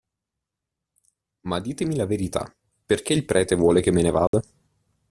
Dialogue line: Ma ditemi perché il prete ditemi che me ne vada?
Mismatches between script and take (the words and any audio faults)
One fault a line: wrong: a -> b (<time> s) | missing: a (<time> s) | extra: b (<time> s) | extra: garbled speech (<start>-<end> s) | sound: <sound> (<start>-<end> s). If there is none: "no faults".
extra: la verità (1.9 s)
wrong: ditemi -> vuole (3.5 s)
sound: dropout (4.3-4.3 s)